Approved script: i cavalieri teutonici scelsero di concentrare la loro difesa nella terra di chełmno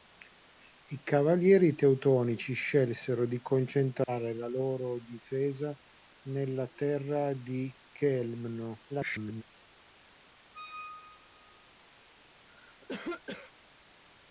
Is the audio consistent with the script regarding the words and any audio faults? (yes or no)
no